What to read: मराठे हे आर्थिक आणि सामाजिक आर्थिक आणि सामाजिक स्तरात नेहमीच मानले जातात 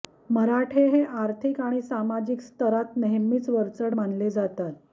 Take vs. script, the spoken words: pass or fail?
fail